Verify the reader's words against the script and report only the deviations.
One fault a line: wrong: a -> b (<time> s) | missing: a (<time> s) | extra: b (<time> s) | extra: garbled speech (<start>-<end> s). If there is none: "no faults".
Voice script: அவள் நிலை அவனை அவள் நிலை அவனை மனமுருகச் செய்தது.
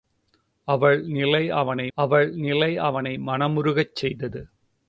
no faults